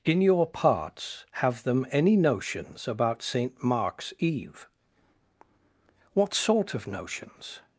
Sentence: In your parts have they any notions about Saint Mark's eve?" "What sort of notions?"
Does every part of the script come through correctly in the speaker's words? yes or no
no